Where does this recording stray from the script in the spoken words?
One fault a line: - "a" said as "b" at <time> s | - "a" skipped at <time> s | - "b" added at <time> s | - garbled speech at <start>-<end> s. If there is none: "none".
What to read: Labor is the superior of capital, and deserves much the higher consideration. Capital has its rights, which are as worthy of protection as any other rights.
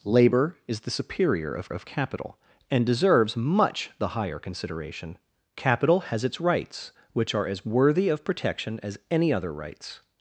- "of" added at 1.7 s